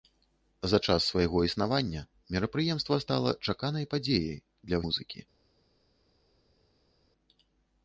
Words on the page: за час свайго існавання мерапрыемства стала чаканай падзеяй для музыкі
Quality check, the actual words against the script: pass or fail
pass